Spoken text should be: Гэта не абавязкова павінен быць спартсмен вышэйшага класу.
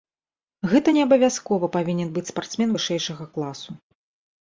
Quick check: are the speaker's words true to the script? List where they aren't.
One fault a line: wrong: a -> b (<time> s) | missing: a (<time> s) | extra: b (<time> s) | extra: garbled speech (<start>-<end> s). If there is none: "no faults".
no faults